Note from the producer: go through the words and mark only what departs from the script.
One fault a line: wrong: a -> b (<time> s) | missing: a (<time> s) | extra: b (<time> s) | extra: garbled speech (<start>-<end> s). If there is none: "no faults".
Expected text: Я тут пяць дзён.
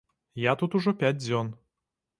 extra: ужо (0.8 s)